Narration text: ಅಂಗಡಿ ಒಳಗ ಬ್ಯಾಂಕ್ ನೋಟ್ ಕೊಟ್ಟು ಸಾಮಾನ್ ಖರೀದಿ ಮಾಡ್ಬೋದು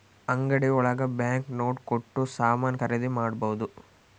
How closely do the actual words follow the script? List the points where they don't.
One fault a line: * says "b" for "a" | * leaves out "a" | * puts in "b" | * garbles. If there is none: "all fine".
all fine